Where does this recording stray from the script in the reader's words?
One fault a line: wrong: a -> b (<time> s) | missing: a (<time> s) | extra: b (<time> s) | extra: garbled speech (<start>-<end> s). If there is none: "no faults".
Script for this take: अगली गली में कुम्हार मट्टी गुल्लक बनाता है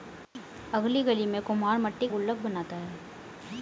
no faults